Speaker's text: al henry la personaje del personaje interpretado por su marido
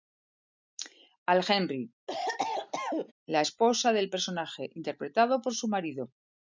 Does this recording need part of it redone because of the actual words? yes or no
yes